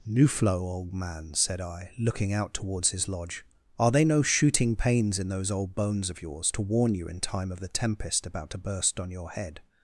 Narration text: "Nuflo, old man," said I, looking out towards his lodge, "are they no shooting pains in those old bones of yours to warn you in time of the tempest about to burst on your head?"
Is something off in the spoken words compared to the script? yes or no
no